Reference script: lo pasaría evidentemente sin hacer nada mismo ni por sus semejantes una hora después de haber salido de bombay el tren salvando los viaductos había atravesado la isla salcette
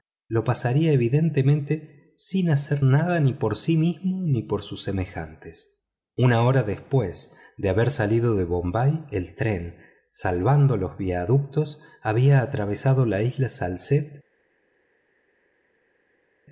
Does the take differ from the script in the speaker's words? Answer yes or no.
yes